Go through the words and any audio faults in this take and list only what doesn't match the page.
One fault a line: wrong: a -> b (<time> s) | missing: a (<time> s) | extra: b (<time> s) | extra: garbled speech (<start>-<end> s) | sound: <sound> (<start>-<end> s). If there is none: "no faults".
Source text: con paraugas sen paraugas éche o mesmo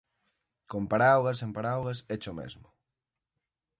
no faults